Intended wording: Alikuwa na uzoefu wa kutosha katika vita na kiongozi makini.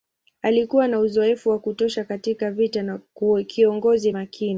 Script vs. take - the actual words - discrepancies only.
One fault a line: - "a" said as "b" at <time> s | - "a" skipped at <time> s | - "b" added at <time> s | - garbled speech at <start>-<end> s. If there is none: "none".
none